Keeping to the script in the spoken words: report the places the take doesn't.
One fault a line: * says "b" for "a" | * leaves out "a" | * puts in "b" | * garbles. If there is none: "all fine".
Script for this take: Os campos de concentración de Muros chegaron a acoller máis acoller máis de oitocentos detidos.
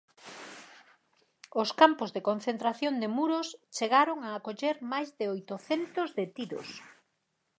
* leaves out "acoller máis"